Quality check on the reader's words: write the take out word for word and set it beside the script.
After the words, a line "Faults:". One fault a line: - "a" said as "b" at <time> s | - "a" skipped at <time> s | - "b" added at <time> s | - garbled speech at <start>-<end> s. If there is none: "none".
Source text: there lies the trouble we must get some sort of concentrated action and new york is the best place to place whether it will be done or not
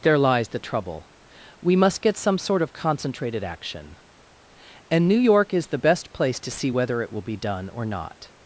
there lies the trouble we must get some sort of concentrated action and new york is the best place to see whether it will be done or not
Faults:
- "place" said as "see" at 6.5 s